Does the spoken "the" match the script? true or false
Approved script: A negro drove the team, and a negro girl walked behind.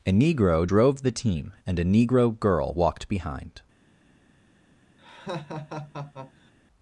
true